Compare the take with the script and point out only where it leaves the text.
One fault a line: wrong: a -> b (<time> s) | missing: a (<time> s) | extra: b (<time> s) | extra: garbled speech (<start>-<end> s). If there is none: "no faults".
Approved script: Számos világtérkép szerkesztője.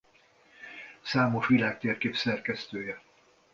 no faults